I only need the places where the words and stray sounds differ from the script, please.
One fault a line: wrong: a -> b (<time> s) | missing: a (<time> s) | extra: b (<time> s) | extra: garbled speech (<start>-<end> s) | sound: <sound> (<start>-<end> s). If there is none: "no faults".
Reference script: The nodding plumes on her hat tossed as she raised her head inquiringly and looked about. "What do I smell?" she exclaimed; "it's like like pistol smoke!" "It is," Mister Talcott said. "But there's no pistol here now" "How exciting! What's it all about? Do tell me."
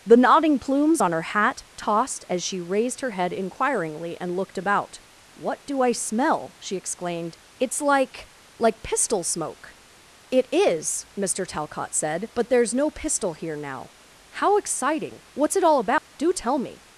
sound: dropout (16.0-16.1 s)